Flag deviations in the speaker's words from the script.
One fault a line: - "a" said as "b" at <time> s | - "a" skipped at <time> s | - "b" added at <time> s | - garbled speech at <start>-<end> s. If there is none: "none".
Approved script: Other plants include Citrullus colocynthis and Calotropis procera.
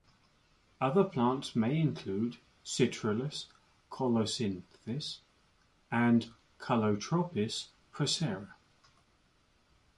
- "may" added at 1.6 s